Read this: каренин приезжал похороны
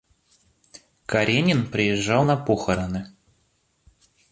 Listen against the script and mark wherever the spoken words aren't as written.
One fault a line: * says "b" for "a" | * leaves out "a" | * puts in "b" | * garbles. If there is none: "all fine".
* puts in "на"